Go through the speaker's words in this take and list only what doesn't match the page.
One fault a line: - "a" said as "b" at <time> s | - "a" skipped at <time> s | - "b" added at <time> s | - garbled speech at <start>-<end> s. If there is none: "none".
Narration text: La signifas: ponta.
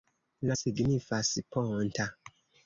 none